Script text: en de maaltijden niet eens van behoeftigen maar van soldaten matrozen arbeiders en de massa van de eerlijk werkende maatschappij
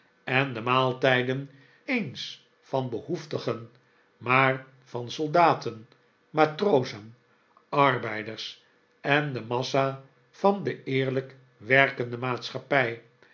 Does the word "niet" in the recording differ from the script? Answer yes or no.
yes